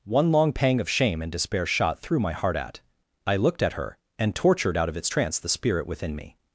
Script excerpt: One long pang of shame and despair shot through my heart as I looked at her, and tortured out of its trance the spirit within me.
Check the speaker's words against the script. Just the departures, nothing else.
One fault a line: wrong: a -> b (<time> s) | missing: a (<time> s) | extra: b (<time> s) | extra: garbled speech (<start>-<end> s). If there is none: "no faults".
wrong: as -> at (2.6 s)